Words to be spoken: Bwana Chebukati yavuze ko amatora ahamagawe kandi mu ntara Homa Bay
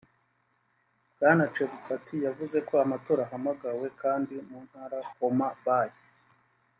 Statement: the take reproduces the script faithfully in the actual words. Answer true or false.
true